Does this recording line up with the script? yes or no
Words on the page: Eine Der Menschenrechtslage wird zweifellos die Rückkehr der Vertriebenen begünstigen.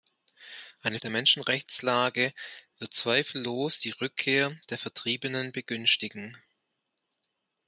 yes